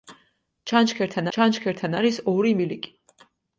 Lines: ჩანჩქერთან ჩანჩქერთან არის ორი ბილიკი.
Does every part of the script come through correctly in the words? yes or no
yes